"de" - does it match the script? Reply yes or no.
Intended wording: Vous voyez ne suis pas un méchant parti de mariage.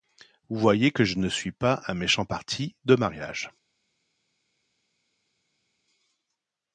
yes